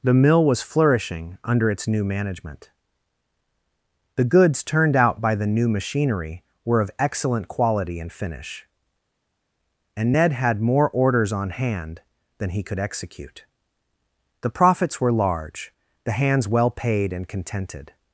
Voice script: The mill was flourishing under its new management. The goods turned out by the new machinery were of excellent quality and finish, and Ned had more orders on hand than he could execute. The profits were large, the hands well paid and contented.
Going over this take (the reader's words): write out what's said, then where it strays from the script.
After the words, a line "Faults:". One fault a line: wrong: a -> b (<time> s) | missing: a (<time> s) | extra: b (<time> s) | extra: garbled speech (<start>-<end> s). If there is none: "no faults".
The mill was flourishing under its new management. The goods turned out by the new machinery were of excellent quality and finish, and Ned had more orders on hand than he could execute. The profits were large, the hands well paid and contented.
Faults:
no faults